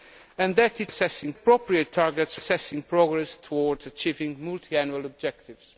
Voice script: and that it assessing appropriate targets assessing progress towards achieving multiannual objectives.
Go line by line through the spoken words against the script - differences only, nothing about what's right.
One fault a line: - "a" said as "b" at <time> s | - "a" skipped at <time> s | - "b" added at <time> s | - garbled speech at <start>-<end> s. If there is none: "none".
none